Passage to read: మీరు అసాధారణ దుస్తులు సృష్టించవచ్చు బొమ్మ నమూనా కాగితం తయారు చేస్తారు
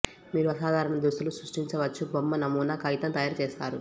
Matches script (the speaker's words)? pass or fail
pass